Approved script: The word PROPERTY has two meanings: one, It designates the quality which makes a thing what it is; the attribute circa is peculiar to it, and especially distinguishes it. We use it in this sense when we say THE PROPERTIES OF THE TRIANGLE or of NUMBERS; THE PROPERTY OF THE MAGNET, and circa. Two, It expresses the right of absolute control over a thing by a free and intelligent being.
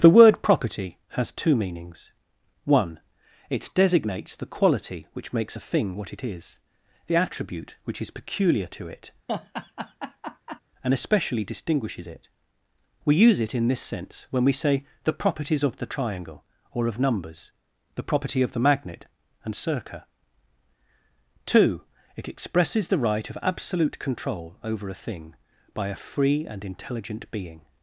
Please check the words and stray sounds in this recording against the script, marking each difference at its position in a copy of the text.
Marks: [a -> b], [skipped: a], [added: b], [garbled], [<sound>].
The word PROPERTY has two meanings: one, It designates the quality which makes a thing what it is; the attribute [circa -> which] is peculiar to it, [laugh] and especially distinguishes it. We use it in this sense when we say THE PROPERTIES OF THE TRIANGLE or of NUMBERS; THE PROPERTY OF THE MAGNET, and circa. Two, It expresses the right of absolute control over a thing by a free and intelligent being.